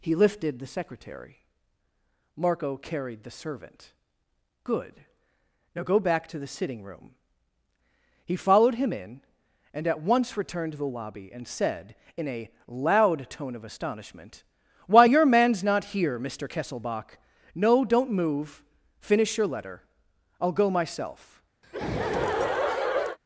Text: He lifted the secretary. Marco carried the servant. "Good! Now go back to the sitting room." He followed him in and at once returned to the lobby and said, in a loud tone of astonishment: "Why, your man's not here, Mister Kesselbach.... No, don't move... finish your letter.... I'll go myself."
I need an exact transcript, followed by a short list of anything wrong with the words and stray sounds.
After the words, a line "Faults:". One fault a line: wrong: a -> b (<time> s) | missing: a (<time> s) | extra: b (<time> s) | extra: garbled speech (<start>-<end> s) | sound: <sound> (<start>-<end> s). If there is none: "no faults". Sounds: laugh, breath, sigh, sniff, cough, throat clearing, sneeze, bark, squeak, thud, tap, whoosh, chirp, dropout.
He lifted the secretary. Marco carried the servant. "Good! Now go back to the sitting room." He followed him in and at once returned to the lobby and said, in a loud tone of astonishment: "Why, your man's not here, Mister Kesselbach.... No, don't move... finish your letter.... I'll go myself."
Faults:
sound: laugh (21.6-23.2 s)